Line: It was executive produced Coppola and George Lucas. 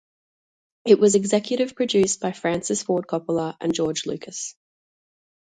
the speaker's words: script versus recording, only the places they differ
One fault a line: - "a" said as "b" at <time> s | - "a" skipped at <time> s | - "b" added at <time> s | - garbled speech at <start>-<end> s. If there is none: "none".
- "by Francis Ford" added at 2.2 s